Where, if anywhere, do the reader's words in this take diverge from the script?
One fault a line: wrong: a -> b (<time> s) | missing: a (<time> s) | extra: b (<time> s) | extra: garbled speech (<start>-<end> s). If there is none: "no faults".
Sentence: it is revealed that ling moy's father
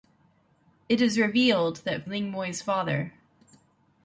no faults